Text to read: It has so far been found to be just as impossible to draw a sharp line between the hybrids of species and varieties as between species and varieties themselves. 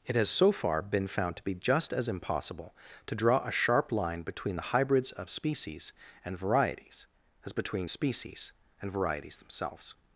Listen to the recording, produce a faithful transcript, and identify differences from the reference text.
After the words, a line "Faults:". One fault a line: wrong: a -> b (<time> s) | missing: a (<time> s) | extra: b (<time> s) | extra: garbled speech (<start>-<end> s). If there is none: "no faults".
It has so far been found to be just as impossible to draw a sharp line between the hybrids of species and varieties as between species and varieties themselves.
Faults:
no faults